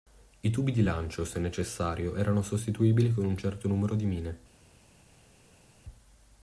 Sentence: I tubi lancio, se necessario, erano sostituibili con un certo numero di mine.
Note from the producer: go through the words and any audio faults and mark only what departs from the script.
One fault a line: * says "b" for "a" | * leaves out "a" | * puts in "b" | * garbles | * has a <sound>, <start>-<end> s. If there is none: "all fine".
* puts in "di"